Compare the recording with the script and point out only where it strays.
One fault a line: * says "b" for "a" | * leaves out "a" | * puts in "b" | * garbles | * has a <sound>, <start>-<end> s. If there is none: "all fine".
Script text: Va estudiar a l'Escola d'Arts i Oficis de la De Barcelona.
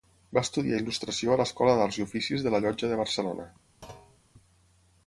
* puts in "il·lustració"
* puts in "Llotja"
* has a thud, 3.8-4.2 s